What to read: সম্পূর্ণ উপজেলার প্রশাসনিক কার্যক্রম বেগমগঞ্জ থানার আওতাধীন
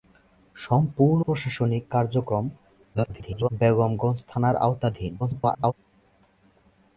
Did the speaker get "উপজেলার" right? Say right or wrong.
wrong